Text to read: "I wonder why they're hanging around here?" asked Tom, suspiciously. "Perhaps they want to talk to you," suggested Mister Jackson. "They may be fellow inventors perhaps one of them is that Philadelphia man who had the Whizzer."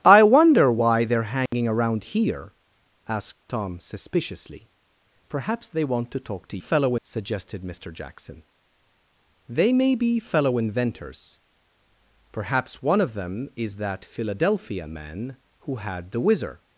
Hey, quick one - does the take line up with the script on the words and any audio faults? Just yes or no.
no